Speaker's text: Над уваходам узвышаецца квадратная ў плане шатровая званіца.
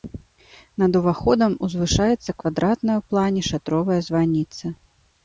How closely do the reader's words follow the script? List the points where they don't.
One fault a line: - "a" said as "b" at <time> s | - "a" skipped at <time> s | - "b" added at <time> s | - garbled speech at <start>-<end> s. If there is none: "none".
none